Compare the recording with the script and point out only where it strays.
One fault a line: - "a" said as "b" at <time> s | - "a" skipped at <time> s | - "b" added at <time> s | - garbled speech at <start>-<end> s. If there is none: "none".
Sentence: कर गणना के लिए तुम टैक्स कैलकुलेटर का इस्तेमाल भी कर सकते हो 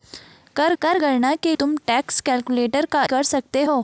- "कर" added at 0.8 s
- "लिए" skipped at 1.5 s
- "इस्तेमाल भी" skipped at 3.0 s